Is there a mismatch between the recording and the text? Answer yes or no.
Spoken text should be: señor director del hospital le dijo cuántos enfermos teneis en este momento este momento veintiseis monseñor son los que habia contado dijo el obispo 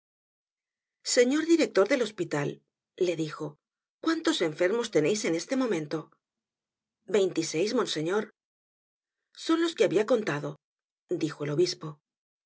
yes